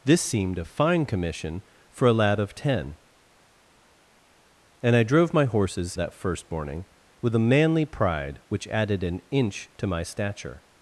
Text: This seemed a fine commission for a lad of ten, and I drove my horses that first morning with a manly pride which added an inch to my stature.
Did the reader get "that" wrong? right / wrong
right